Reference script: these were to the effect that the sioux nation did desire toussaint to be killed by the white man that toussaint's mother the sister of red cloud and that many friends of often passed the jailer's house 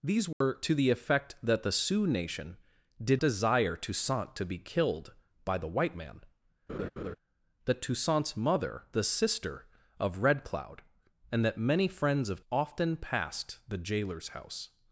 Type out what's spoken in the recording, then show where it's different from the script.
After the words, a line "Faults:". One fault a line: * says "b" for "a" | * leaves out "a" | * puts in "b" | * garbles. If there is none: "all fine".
these were to the effect that the sioux nation did desire toussaint to be killed by the white man that toussaint's mother the sister of red cloud and that many friends of often passed the jailer's house
Faults:
all fine